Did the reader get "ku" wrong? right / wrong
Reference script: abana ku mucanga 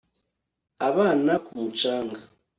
right